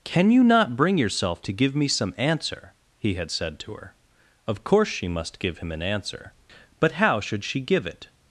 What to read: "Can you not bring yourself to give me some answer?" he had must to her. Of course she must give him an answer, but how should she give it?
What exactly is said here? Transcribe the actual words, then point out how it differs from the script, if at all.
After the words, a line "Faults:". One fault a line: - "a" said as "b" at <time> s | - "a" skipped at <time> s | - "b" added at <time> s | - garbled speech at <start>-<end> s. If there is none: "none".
"Can you not bring yourself to give me some answer?" he had said to her. Of course she must give him an answer, but how should she give it?
Faults:
- "must" said as "said" at 3.3 s